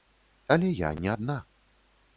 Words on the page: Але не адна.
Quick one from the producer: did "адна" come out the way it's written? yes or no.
yes